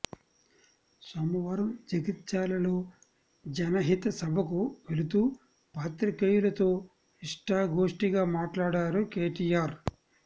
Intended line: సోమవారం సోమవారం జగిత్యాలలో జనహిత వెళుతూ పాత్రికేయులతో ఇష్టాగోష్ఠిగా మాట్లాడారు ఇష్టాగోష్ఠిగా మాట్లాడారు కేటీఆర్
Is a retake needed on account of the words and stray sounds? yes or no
yes